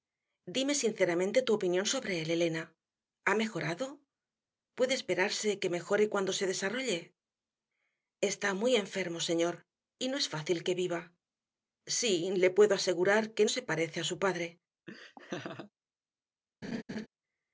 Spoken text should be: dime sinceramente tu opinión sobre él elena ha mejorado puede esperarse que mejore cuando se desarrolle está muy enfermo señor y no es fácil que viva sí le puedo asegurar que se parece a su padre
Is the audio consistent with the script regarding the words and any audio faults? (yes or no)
no